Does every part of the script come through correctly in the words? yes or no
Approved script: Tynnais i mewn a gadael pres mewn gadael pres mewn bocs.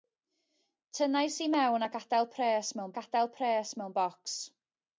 yes